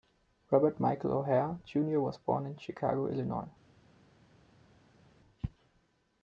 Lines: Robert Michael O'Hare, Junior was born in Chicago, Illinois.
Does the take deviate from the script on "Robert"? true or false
false